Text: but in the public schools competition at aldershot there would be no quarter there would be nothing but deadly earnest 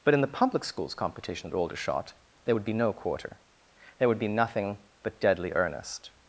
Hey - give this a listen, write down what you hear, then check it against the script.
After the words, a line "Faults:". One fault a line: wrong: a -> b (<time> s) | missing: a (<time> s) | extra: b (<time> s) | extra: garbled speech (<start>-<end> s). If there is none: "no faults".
but in the public schools competition at aldershot there would be no quarter there would be nothing but deadly earnest
Faults:
no faults